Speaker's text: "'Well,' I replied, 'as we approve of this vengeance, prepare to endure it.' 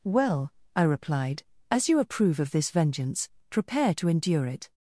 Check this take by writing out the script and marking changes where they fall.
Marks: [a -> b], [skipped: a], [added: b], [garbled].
"'Well,' I replied, 'as [we -> you] approve of this vengeance, prepare to endure it.'